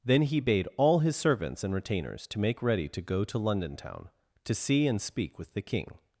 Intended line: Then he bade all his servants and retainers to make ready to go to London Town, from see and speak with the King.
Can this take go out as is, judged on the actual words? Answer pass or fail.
fail